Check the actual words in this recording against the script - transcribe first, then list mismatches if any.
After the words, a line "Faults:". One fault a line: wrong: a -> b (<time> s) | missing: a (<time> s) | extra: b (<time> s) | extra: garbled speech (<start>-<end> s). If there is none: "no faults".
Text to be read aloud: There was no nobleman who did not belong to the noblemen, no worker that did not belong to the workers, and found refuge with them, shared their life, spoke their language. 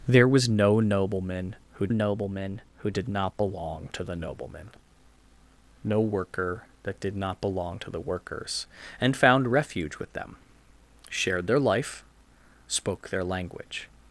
There was no nobleman who nobleman who did not belong to the noblemen, no worker that did not belong to the workers, and found refuge with them, shared their life, spoke their language.
Faults:
extra: nobleman who (1.9 s)